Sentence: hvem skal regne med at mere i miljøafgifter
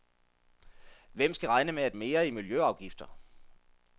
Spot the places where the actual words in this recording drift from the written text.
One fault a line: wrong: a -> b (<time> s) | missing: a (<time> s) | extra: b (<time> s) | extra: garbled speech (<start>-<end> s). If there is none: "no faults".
no faults